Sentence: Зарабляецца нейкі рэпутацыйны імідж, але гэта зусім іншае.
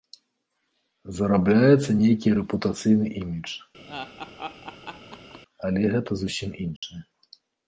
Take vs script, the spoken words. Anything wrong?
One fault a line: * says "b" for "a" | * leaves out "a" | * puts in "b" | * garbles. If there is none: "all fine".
all fine